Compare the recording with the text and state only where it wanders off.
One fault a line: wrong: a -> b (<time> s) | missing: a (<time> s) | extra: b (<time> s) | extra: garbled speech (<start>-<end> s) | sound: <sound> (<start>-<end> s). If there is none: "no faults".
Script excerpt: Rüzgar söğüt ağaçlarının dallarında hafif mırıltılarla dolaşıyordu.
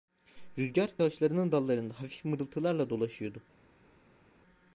missing: söğüt (0.9 s)